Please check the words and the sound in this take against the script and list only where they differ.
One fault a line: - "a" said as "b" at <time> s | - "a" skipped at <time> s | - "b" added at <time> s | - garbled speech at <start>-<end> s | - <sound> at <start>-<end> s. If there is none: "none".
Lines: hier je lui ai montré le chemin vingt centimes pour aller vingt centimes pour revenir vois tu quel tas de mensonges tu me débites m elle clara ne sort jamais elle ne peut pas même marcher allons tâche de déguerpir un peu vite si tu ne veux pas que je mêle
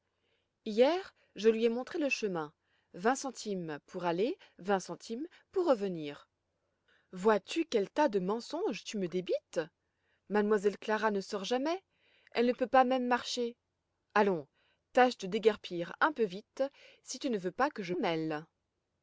none